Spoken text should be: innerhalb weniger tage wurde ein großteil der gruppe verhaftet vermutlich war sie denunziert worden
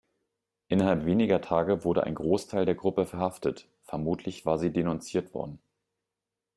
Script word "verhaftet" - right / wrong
right